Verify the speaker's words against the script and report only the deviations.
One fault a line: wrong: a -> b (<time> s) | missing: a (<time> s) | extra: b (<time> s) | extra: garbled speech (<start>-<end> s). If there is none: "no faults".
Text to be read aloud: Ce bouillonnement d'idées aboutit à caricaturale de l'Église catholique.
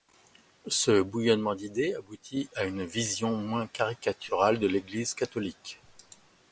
extra: une vision moins (2.6 s)